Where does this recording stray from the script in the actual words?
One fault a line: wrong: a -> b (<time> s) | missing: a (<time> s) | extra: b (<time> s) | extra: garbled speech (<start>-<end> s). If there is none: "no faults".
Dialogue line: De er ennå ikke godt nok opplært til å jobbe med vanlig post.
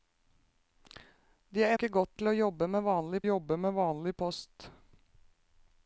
missing: ennå (1.7 s)
wrong: nok opplært til å -> til å jobbe med vanlig (2.2 s)